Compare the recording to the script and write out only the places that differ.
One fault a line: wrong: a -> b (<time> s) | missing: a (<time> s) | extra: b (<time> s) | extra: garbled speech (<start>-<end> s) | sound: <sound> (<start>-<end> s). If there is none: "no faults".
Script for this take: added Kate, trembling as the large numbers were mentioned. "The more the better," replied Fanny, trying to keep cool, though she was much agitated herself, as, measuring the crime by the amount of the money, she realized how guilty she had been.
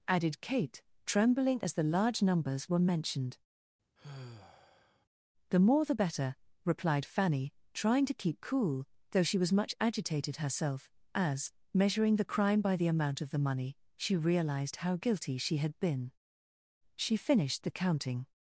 sound: sigh (4.0-5.1 s)
extra: She finished the counting (17.0 s)